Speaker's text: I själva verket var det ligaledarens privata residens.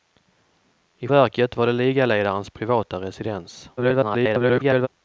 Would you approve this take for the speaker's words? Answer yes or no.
no